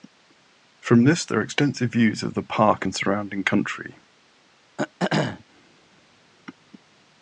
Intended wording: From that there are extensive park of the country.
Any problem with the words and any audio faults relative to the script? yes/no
yes